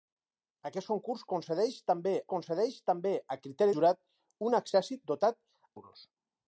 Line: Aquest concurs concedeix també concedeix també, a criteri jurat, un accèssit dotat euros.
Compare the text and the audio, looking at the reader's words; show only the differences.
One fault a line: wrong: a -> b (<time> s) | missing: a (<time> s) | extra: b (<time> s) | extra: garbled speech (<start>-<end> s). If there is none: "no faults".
no faults